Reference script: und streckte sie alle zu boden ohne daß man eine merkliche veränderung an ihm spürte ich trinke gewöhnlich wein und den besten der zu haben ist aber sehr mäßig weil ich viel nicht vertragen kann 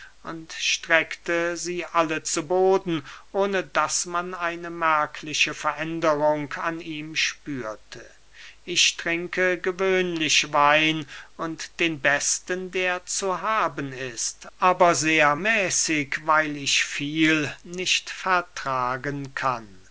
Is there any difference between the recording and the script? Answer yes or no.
no